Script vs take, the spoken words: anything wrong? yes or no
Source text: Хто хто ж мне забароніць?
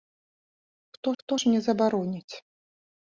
no